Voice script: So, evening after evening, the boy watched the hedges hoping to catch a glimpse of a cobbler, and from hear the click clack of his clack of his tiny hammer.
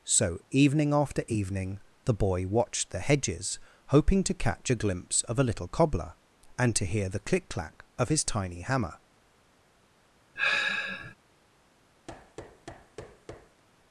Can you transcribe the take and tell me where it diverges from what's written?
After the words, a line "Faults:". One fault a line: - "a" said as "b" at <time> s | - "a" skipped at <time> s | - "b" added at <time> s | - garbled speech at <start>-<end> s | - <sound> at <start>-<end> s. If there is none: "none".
So, evening after evening, the boy watched the hedges hoping to catch a glimpse of a little cobbler, and to hear the click clack of his tiny hammer.
Faults:
- "little" added at 5.4 s
- "from" said as "to" at 6.7 s
- "clack of his" skipped at 8.2 s
- sigh at 10.3-11.1 s
- thud at 12.1-13.6 s